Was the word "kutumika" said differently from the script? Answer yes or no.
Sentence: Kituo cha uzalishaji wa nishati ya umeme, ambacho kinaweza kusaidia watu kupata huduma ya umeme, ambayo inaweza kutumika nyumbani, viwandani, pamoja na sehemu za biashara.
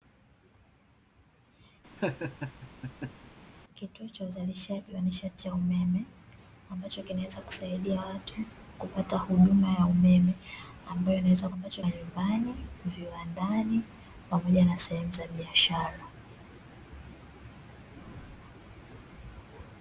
yes